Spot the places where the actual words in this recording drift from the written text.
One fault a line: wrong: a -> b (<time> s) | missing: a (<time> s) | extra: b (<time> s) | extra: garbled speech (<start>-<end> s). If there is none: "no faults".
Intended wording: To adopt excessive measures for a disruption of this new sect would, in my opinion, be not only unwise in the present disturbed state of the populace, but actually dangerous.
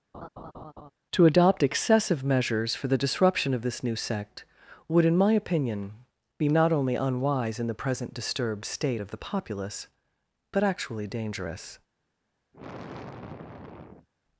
wrong: a -> the (2.9 s)